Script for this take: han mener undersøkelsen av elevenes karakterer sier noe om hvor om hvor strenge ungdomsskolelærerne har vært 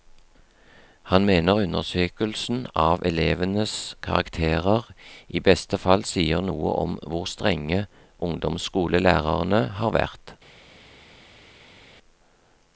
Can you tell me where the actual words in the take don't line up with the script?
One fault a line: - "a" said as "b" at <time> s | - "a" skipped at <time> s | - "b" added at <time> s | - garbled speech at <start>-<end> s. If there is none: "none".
- "i beste fall" added at 5.3 s
- "om hvor" skipped at 7.2 s